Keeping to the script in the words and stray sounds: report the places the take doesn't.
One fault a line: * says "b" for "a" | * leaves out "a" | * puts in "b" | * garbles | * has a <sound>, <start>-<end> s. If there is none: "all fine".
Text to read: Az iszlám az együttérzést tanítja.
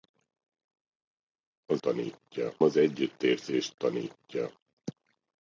* says "tanítja" for "iszlám"